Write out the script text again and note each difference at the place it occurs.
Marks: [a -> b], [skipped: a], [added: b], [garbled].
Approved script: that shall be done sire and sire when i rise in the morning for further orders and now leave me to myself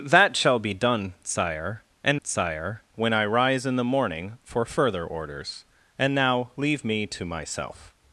that shall be done sire and sire when i rise in the morning for further orders and now leave me to myself